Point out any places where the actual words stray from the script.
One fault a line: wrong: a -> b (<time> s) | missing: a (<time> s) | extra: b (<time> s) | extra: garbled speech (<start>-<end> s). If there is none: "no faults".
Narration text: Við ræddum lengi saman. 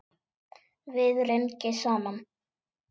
missing: ræddum (1.2 s)